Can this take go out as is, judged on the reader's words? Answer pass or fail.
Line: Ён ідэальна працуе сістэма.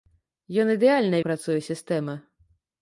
pass